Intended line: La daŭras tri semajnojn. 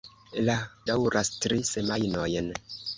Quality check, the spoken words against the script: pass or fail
pass